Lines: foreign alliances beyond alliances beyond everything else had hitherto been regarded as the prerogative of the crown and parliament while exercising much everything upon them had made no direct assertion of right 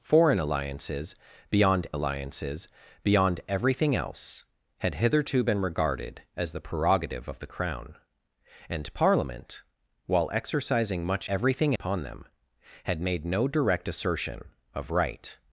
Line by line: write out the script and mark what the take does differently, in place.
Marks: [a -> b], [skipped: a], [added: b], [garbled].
foreign alliances beyond alliances beyond everything else had hitherto been regarded as the prerogative of the crown and parliament while exercising much everything upon them had made no direct assertion of right